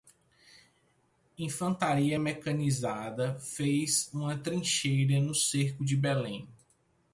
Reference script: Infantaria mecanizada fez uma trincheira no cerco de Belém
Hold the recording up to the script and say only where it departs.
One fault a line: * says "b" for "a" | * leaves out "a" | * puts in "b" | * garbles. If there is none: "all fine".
all fine